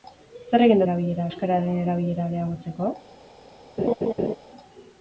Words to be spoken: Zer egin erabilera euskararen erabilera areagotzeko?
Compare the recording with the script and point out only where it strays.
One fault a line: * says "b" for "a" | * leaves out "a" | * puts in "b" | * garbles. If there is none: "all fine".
all fine